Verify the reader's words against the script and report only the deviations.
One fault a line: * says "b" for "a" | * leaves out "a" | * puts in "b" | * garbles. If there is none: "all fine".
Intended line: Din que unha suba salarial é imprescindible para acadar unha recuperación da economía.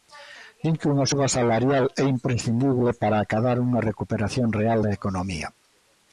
* puts in "real"